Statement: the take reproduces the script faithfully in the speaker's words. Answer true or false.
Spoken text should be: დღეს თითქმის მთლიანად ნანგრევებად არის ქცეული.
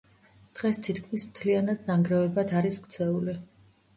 true